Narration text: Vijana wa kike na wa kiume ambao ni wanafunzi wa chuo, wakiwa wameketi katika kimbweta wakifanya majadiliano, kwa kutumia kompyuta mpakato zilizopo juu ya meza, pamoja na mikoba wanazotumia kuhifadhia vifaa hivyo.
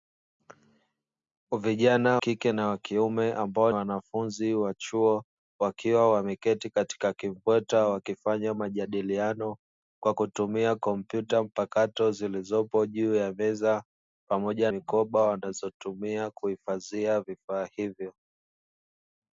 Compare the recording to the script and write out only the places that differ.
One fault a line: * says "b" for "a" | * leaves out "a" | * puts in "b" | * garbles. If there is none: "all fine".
* leaves out "wa"
* leaves out "ni"
* leaves out "na"